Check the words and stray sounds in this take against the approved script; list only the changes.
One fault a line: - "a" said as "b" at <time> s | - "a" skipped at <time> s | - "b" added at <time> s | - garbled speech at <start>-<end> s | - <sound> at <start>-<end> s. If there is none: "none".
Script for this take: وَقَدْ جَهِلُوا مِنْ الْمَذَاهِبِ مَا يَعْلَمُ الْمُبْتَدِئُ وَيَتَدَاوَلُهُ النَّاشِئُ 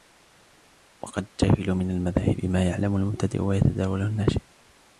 none